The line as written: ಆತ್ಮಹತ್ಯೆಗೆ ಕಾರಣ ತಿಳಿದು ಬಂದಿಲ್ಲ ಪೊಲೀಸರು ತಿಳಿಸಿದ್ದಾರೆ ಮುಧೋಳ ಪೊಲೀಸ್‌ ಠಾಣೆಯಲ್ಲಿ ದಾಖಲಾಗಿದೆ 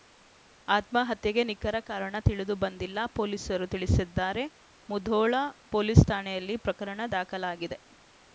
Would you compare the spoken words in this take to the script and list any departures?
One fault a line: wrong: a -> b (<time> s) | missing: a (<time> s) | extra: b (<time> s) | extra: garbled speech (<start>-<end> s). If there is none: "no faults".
extra: ನಿಖರ (1.5 s)
extra: ಪ್ರಕರಣ (6.7 s)